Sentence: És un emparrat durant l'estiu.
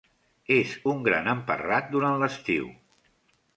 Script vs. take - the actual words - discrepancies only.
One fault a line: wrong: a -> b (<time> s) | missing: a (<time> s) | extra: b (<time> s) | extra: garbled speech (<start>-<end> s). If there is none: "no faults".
extra: gran (1.1 s)